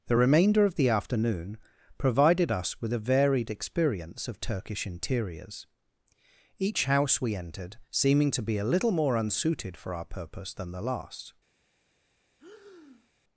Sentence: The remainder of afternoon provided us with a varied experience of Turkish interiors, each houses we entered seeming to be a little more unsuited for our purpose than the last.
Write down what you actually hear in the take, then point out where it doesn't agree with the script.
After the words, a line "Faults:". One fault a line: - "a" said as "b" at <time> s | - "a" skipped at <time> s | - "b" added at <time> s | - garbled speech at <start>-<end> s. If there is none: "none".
The remainder of the afternoon provided us with a varied experience of Turkish interiors, each house we entered seeming to be a little more unsuited for our purpose than the last.
Faults:
- "the" added at 0.8 s
- "houses" said as "house" at 6.8 s